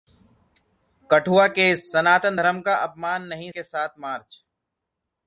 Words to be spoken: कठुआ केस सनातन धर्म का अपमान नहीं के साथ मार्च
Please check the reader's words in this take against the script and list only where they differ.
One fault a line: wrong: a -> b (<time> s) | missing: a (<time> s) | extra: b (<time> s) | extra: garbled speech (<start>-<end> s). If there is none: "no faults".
no faults